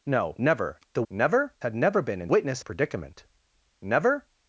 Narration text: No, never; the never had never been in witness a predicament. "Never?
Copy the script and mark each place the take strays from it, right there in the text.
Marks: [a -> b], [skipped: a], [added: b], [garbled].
No, never; the never had never been in witness a predicament. "Never?